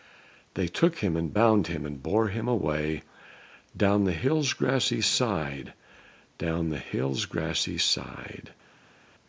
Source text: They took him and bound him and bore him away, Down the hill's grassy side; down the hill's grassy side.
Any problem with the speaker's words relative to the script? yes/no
no